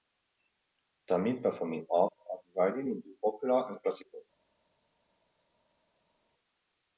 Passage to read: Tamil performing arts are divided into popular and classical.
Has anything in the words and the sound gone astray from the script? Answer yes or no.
no